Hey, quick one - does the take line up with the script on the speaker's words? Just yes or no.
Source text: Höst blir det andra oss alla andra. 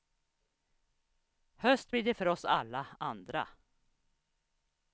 no